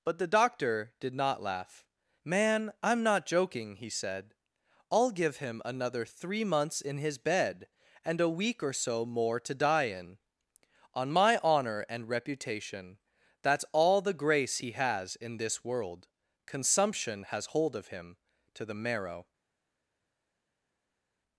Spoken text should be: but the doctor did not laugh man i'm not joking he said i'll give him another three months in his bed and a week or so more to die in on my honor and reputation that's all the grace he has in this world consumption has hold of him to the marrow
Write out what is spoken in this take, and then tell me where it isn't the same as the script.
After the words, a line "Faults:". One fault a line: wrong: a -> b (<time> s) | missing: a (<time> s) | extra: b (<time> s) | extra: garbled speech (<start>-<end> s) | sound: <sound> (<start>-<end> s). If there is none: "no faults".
but the doctor did not laugh man i'm not joking he said i'll give him another three months in his bed and a week or so more to die in on my honor and reputation that's all the grace he has in this world consumption has hold of him to the marrow
Faults:
no faults